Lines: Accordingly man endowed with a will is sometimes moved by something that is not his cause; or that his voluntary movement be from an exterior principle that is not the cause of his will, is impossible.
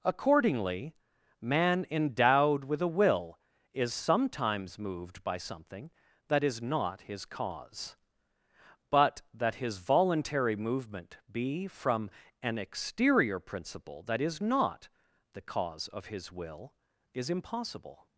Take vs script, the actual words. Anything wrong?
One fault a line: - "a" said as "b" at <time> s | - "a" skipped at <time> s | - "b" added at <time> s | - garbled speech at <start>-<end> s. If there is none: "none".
- "or" said as "but" at 8.9 s